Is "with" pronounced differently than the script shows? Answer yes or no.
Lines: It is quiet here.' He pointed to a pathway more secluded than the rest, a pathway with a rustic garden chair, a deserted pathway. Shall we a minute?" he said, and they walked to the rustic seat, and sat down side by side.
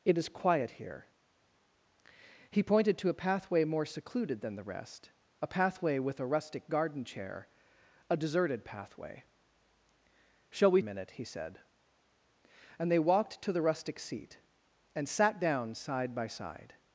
no